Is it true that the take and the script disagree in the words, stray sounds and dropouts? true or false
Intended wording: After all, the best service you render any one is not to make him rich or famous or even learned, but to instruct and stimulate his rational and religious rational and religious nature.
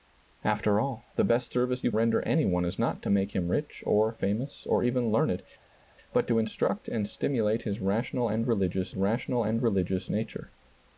false